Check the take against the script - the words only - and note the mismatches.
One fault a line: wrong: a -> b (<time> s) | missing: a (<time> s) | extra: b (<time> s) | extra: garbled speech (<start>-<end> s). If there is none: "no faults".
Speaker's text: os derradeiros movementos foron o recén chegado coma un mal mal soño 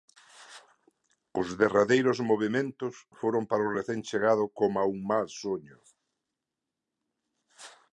extra: para (3.5 s)
missing: mal (5.3 s)